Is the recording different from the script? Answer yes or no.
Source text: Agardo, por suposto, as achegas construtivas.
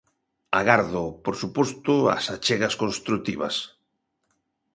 no